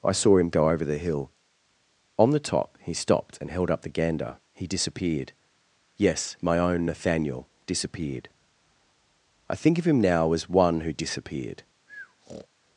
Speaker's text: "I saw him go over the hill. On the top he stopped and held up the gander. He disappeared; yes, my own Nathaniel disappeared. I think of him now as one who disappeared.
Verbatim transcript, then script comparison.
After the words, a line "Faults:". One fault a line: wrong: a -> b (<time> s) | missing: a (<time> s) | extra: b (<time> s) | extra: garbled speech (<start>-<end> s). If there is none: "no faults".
"I saw him go over the hill. On the top he stopped and held up the gander. He disappeared; yes, my own Nathaniel disappeared. I think of him now as one who disappeared.
Faults:
no faults